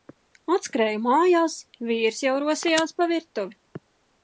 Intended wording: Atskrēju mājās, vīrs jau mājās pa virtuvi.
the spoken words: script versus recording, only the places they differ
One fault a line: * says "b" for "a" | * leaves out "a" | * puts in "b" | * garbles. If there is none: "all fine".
* says "rosījās" for "mājās"